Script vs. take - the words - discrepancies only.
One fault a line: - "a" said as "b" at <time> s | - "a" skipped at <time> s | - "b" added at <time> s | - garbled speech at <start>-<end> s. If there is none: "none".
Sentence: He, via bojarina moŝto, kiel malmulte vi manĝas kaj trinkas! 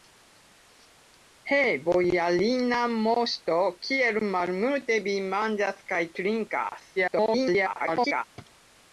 - "via" skipped at 1.6 s
- garbled speech at 7.0-8.2 s